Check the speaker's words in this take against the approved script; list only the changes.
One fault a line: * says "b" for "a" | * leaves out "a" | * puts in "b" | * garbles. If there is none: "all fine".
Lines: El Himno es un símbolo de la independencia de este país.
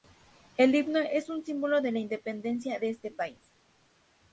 all fine